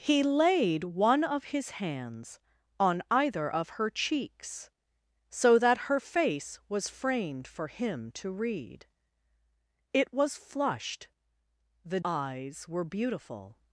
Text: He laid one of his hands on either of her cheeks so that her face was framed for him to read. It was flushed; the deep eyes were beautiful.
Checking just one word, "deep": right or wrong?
wrong